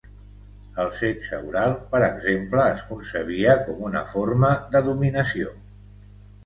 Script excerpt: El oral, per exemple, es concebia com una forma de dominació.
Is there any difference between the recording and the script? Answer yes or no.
yes